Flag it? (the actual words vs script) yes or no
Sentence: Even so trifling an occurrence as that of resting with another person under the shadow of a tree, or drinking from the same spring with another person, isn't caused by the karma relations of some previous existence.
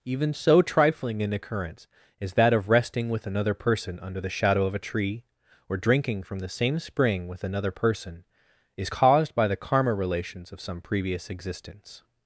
yes